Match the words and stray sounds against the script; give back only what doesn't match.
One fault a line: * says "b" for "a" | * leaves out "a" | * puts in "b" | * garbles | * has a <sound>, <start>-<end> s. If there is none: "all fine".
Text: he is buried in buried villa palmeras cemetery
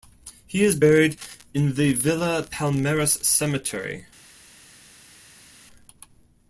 * says "the" for "buried"